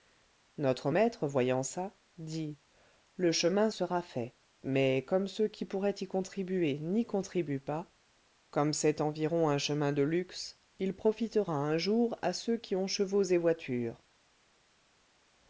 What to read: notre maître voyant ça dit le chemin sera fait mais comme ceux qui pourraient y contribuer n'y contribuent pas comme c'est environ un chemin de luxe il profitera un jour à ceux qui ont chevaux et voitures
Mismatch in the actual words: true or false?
false